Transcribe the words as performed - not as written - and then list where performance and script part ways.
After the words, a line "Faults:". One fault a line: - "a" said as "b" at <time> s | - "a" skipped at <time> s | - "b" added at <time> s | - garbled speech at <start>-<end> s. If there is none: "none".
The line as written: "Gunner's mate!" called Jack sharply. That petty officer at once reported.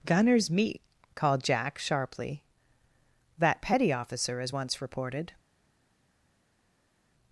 "Gunner's meat!" called Jack sharply. That petty officer as once reported.
Faults:
- "mate" said as "meat" at 0.5 s
- "at" said as "as" at 4.4 s